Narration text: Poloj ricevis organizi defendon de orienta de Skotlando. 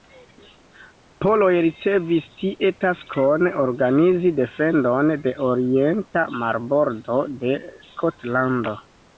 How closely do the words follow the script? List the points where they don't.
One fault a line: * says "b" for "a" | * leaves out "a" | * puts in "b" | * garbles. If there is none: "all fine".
* puts in "tie taskon"
* puts in "marbordo"